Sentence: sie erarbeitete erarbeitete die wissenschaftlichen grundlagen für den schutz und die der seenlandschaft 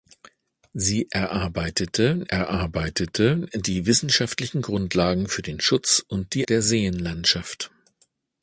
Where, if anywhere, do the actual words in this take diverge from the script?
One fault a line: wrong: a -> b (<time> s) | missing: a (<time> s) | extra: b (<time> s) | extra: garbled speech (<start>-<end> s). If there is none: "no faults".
no faults